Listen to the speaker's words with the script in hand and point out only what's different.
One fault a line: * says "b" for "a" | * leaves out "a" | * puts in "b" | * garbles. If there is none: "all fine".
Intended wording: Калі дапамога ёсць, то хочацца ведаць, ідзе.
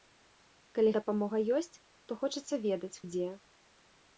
all fine